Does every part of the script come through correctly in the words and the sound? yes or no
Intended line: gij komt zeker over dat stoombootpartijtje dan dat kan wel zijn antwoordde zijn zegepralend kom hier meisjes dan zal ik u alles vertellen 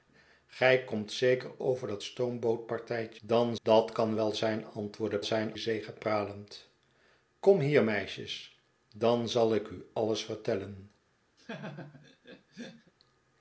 no